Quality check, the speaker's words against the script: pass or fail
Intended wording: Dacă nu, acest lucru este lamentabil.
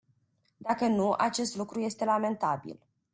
pass